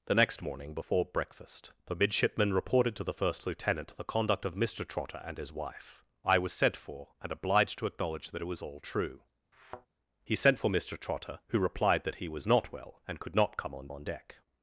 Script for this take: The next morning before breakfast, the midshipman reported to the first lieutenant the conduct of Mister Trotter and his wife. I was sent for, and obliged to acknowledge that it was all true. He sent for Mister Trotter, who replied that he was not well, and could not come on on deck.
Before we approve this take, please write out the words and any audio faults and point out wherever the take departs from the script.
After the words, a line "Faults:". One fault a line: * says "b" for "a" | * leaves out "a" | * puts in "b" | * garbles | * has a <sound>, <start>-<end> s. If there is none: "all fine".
The next morning before breakfast, the midshipman reported to the first lieutenant the conduct of Mister Trotter and his wife. I was sent for, and obliged to acknowledge that it was all true. He sent for Mister Trotter, who replied that he was not well, and could not come on on deck.
Faults:
* has a thud, 9.5-9.9 s